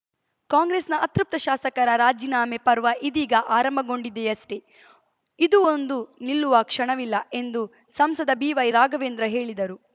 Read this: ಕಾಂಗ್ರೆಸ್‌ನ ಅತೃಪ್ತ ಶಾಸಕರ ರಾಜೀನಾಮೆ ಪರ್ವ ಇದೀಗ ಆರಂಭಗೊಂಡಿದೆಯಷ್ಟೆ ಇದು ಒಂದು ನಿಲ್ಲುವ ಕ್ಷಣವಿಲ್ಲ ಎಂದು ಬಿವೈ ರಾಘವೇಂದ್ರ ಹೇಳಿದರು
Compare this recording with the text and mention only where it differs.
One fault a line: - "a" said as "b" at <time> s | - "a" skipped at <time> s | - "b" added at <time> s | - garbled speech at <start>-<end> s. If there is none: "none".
- "ಸಂಸದ" added at 7.9 s